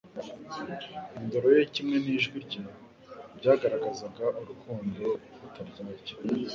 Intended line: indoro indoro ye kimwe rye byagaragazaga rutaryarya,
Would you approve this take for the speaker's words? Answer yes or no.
no